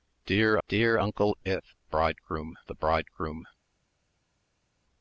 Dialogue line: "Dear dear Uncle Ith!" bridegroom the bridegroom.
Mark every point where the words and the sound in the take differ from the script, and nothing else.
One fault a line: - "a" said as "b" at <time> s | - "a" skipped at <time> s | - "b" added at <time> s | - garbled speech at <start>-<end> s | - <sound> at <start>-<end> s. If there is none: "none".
none